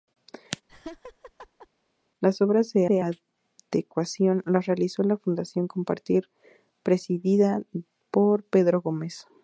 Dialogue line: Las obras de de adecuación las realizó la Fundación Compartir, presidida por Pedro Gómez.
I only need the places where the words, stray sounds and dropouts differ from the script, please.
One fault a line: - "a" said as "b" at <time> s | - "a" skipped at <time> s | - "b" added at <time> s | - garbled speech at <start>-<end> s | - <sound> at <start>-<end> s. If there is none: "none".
- laugh at 0.7-1.7 s